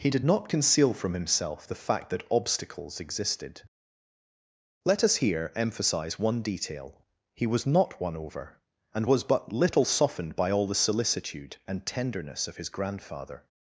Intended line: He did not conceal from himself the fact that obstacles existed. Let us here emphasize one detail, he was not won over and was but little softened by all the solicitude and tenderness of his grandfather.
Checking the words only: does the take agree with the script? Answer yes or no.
yes